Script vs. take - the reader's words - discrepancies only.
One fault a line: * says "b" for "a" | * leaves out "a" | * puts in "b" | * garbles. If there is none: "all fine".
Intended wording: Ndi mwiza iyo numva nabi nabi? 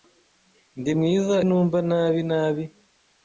* leaves out "iyo"